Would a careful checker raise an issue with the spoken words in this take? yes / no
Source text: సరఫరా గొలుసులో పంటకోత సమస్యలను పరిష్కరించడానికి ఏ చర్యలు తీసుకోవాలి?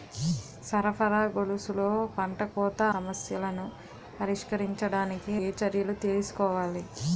no